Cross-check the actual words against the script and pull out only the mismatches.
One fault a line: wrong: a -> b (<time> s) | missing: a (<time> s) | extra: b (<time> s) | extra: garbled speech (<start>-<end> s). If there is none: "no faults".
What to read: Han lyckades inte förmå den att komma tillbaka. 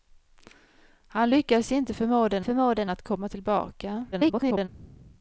extra: förmå den (2.4 s)
extra: garbled speech (4.1-4.7 s)